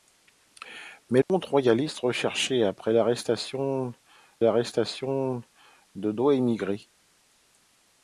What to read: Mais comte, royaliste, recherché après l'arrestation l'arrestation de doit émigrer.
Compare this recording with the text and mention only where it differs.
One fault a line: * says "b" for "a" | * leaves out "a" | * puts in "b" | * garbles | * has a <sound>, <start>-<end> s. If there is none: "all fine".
* has a dropout, 1.2-1.3 s